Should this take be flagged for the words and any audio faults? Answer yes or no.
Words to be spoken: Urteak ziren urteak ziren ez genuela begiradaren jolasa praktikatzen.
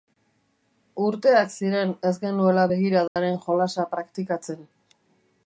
yes